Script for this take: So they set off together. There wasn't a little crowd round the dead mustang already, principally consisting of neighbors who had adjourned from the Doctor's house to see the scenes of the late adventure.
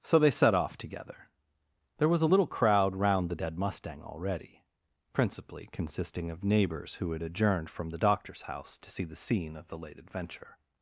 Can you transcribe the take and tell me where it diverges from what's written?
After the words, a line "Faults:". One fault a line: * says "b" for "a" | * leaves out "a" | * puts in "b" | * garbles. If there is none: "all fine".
So they set off together. There was a little crowd round the dead mustang already, principally consisting of neighbors who had adjourned from the Doctor's house to see the scene of the late adventure.
Faults:
* says "was" for "wasn't"
* says "scene" for "scenes"